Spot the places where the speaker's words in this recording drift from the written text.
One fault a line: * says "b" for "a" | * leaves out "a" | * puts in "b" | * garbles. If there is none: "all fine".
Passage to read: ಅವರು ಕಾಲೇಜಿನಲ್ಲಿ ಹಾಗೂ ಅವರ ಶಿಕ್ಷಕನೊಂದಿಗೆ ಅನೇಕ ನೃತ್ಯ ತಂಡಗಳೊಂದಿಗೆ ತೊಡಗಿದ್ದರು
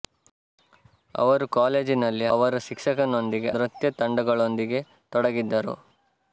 * leaves out "ಹಾಗೂ"
* leaves out "ಅನೇಕ"